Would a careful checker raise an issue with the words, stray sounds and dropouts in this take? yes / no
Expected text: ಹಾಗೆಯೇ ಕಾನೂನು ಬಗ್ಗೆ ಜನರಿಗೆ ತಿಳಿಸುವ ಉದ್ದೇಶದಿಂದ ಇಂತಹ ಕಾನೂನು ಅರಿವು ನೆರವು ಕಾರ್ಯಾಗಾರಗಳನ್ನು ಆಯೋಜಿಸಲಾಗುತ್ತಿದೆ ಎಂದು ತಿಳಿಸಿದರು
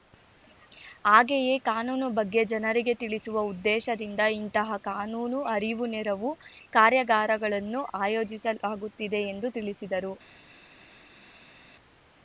no